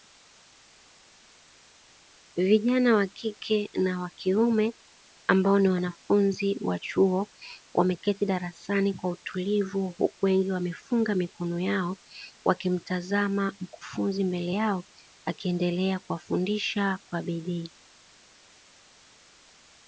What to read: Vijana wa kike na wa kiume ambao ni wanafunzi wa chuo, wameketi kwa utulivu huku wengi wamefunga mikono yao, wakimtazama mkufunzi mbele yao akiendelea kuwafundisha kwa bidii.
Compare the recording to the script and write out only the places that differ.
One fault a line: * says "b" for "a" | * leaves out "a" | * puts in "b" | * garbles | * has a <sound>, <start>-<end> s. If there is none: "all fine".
* puts in "darasani"